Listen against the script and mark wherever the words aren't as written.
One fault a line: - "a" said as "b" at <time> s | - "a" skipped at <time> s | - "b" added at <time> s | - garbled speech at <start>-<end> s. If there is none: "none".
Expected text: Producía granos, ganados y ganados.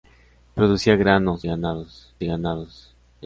none